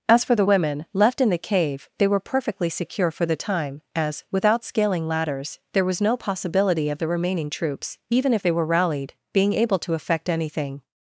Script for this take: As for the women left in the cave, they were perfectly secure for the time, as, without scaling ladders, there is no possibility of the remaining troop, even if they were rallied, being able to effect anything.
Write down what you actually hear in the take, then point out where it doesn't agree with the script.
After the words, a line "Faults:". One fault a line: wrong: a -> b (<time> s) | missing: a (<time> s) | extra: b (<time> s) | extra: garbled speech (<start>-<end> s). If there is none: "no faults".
As for the women left in the cave, they were perfectly secure for the time, as, without scaling ladders, there was no possibility of the remaining troops, even if they were rallied, being able to effect anything.
Faults:
wrong: is -> was (5.8 s)
wrong: troop -> troops (7.5 s)